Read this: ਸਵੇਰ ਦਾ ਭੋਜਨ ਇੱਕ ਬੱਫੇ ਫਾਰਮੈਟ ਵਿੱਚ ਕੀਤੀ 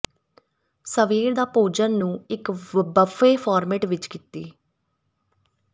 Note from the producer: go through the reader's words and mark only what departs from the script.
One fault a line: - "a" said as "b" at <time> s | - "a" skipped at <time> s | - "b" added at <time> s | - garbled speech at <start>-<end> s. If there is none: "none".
- "ਨੂੰ" added at 2.0 s